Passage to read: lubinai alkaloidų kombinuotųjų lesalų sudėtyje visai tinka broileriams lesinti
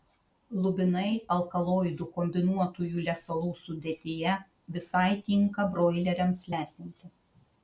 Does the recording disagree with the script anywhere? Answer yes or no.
no